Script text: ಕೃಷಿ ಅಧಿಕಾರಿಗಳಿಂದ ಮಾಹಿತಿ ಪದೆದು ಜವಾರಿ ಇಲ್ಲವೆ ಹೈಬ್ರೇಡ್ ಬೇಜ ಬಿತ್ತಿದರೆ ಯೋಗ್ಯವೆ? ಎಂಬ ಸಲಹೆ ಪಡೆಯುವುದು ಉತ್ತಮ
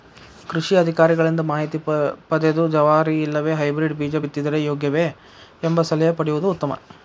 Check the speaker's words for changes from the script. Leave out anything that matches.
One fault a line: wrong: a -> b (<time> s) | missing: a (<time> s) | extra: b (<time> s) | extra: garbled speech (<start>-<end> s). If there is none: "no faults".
no faults